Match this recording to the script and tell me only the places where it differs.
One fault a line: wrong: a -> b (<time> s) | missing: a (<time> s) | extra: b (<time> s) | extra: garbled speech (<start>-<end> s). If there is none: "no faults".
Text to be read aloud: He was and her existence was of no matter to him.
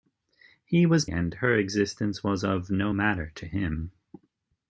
no faults